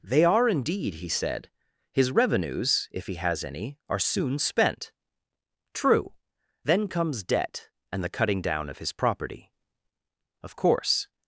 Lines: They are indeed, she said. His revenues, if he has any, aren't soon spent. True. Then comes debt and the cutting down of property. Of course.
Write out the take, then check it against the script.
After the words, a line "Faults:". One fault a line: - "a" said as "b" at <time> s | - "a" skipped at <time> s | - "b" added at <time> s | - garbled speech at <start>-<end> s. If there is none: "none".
They are indeed, he said. His revenues, if he has any, are soon spent. True. Then comes debt and the cutting down of his property. Of course.
Faults:
- "she" said as "he" at 0.9 s
- "aren't" said as "are" at 3.9 s
- "his" added at 8.8 s